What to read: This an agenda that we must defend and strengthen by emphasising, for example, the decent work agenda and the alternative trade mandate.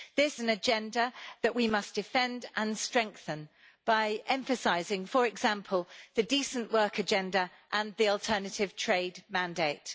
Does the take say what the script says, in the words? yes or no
yes